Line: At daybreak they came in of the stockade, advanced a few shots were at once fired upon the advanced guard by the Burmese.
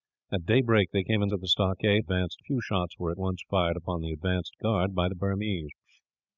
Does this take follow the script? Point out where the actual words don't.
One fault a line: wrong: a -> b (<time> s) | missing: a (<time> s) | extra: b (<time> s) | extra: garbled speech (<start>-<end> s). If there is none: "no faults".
no faults